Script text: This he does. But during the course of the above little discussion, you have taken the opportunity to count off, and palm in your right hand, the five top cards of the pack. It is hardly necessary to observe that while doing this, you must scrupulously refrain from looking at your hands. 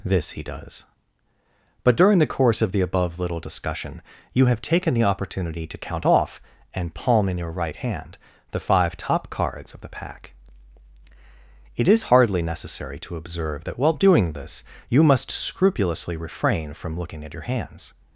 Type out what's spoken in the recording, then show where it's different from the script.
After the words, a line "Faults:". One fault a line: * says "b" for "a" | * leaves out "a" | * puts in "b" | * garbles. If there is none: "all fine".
This he does. But during the course of the above little discussion, you have taken the opportunity to count off, and palm in your right hand, the five top cards of the pack. It is hardly necessary to observe that while doing this, you must scrupulously refrain from looking at your hands.
Faults:
all fine